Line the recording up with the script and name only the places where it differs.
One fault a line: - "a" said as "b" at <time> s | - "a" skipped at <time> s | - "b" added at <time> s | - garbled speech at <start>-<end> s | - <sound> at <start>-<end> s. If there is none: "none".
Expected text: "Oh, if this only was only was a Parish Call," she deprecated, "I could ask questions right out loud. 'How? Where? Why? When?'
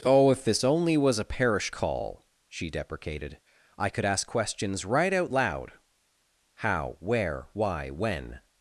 - "only was" skipped at 1.2 s